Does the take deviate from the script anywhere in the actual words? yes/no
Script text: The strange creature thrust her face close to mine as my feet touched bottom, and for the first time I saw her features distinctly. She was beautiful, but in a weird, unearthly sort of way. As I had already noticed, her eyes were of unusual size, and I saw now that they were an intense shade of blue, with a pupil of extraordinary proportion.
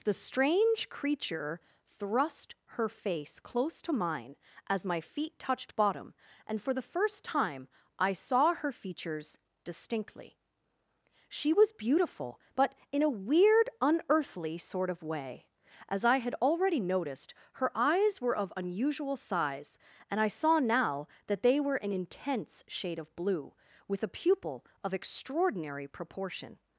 no